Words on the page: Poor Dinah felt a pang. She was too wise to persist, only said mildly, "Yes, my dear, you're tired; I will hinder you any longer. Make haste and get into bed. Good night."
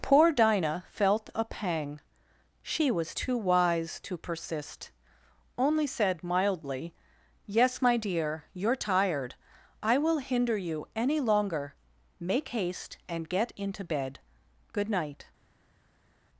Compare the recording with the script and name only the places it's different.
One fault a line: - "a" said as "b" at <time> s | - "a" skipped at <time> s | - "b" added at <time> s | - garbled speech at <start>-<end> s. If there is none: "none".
none